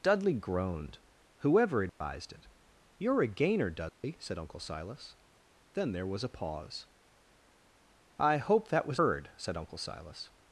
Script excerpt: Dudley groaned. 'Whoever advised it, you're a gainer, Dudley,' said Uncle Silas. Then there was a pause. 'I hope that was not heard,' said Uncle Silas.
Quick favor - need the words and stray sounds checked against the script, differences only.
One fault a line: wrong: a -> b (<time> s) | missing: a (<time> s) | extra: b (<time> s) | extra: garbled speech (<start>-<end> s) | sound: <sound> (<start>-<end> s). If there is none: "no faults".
sound: dropout (1.9-2.0 s)
sound: dropout (3.9-4.0 s)
missing: not (9.0 s)